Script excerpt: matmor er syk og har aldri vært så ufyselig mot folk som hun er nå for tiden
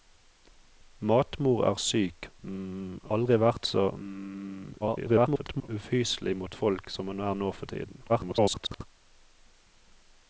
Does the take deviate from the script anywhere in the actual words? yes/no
yes